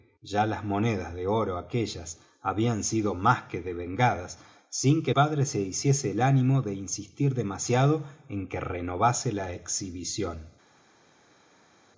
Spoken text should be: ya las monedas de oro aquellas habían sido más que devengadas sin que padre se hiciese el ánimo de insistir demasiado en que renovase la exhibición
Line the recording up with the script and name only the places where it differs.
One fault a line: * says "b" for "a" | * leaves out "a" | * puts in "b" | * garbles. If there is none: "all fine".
all fine